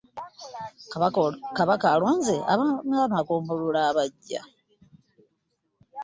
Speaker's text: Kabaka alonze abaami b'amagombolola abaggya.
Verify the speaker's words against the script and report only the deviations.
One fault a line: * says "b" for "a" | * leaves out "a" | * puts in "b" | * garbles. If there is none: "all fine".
all fine